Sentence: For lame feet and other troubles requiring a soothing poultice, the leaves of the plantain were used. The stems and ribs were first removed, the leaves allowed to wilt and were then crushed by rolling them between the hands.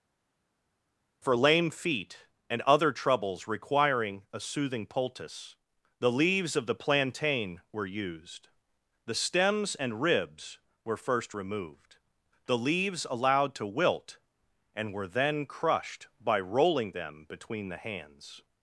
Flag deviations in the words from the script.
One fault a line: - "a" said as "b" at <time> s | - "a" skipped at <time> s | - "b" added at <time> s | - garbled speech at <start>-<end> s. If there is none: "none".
none